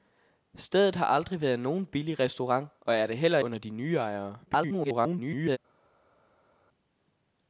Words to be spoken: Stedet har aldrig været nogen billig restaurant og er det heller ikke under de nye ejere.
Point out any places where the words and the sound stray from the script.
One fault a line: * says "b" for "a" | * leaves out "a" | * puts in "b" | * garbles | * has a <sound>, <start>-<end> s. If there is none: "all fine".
* leaves out "ikke"
* garbles